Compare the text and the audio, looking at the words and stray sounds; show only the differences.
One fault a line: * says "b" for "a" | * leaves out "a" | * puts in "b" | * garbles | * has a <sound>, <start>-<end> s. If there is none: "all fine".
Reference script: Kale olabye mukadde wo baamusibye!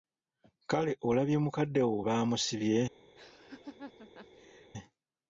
* has a laugh, 3.2-4.7 s